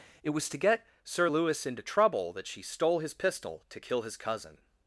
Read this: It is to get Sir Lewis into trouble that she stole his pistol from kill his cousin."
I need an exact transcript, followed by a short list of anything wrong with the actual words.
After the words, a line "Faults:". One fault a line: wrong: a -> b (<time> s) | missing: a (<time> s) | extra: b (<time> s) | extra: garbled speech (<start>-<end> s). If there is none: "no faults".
It was to get Sir Lewis into trouble that she stole his pistol to kill his cousin."
Faults:
wrong: is -> was (0.3 s)
wrong: from -> to (3.7 s)